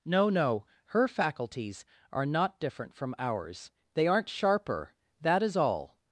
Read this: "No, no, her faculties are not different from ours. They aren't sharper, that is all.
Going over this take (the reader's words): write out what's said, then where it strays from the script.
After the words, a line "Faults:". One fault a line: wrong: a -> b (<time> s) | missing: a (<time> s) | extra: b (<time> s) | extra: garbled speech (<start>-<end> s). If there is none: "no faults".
"No, no, her faculties are not different from ours. They aren't sharper, that is all.
Faults:
no faults